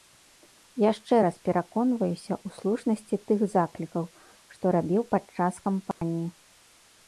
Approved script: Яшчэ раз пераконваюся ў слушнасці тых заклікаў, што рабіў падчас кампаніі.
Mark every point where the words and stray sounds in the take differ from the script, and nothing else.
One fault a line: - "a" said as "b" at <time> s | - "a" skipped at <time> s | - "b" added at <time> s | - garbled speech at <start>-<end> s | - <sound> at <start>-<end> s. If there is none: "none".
- dropout at 5.9-6.0 s